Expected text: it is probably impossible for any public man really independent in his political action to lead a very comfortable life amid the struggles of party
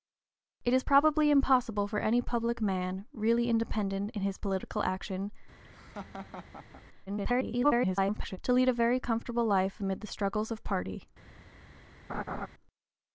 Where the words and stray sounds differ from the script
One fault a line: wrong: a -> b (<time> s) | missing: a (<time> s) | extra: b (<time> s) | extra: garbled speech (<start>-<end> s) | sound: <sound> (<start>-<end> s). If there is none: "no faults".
sound: laugh (5.6-6.8 s)
extra: garbled speech (7.1-8.4 s)
sound: laugh (12.1-12.5 s)